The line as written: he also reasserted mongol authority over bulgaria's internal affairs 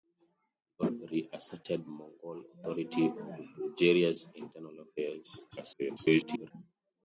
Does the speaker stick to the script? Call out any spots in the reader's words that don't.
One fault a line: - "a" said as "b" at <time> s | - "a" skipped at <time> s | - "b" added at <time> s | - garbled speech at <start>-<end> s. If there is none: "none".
- "also" skipped at 0.9 s
- garbled speech at 5.5-6.5 s